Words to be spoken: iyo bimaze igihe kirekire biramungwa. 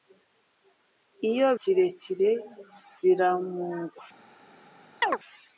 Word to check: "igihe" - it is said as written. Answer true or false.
false